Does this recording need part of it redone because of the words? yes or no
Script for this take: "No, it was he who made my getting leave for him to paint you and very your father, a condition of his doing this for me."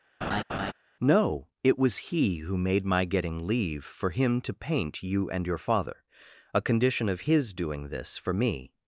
yes